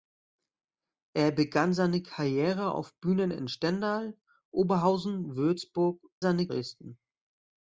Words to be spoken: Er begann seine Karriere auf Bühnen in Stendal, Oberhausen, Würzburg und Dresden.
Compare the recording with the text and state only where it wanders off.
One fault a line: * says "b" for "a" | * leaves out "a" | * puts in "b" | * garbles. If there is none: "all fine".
* says "seine" for "und"